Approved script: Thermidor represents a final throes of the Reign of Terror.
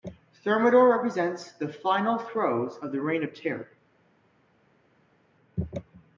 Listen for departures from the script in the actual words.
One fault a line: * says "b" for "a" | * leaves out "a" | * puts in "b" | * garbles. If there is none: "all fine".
* says "the" for "a"